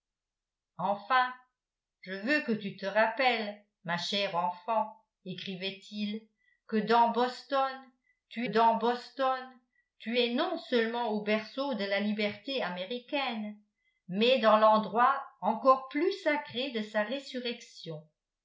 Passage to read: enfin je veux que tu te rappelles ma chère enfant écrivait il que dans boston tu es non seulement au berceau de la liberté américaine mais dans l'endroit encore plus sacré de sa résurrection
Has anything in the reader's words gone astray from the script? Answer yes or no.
yes